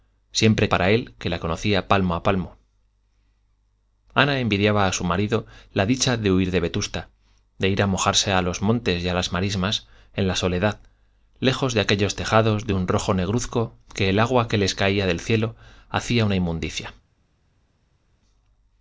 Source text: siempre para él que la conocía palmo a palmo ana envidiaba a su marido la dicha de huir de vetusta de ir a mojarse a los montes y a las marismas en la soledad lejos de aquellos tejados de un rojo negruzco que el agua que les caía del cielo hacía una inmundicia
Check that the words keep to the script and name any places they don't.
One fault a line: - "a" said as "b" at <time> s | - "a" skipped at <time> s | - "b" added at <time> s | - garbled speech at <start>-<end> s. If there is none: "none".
none